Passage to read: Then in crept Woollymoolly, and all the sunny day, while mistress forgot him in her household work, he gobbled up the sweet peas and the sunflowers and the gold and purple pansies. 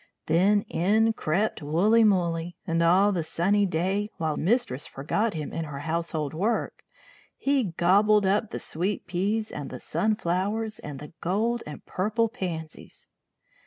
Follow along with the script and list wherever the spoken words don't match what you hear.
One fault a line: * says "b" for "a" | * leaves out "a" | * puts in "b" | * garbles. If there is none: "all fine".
all fine